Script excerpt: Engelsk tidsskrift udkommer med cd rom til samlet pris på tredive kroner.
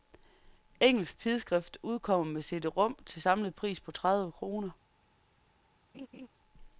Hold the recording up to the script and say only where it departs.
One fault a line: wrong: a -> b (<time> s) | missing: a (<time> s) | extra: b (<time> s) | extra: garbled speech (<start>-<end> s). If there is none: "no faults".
no faults